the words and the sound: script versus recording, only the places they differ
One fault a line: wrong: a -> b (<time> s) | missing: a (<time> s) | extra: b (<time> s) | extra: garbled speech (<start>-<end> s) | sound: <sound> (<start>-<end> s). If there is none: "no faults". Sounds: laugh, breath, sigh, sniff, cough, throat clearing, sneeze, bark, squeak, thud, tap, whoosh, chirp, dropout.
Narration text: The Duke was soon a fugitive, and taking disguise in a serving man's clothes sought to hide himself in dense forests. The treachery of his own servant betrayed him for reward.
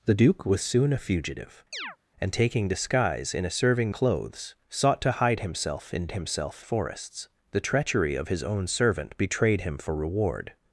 sound: chirp (1.7-2.0 s)
missing: man's (3.9 s)
wrong: dense -> himself (6.1 s)